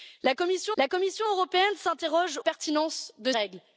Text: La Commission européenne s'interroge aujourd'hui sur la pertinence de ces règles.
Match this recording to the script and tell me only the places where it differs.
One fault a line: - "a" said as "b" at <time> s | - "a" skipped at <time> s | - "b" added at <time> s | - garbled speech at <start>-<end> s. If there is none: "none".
- "la Commission" added at 0.8 s
- "aujourd'hui sur la" skipped at 2.4 s
- "ces" skipped at 3.3 s